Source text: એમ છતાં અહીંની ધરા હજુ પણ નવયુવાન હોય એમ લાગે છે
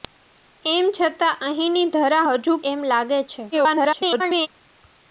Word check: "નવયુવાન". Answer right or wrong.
wrong